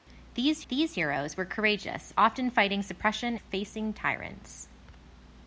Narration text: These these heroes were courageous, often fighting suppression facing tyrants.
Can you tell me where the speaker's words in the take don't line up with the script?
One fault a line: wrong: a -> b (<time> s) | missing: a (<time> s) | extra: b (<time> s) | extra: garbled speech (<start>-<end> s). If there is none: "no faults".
no faults